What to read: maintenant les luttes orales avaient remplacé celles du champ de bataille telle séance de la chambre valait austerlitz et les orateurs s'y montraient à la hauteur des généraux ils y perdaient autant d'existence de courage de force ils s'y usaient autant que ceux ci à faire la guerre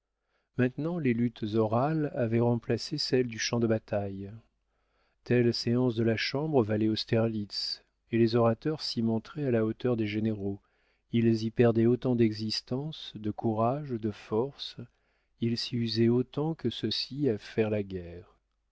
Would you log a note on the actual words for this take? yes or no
no